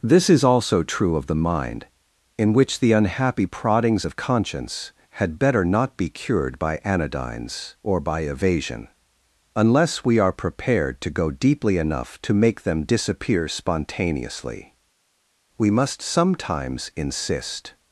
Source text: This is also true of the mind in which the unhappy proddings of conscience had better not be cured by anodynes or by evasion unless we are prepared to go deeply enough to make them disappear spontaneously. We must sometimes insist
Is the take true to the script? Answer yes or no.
yes